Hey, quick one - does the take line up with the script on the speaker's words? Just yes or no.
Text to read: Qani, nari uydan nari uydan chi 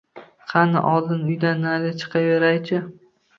no